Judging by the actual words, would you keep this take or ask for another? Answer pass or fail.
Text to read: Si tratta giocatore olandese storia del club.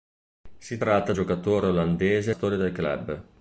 pass